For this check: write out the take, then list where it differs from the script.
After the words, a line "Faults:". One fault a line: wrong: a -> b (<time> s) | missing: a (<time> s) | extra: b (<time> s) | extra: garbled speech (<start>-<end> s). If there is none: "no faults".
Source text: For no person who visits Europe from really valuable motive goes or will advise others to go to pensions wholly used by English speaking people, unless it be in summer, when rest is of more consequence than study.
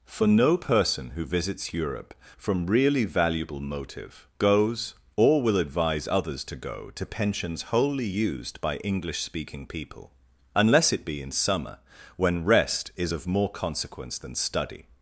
For no person who visits Europe from really valuable motive goes or will advise others to go to pensions wholly used by English speaking people, unless it be in summer, when rest is of more consequence than study.
Faults:
no faults